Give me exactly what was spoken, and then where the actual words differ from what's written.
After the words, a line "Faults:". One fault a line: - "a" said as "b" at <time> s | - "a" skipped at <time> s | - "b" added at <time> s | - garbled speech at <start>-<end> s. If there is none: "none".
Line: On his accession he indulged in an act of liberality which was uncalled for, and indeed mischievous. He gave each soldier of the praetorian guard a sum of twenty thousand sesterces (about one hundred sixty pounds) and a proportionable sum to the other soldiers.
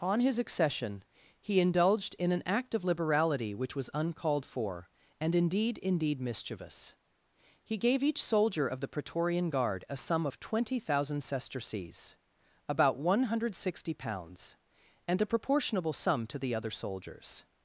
On his accession he indulged in an act of liberality which was uncalled for, and indeed indeed mischievous. He gave each soldier of the praetorian guard a sum of twenty thousand sesterces (about one hundred sixty pounds) and a proportionable sum to the other soldiers.
Faults:
- "indeed" added at 5.8 s